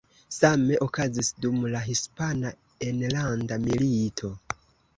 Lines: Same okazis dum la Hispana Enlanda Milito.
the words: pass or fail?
pass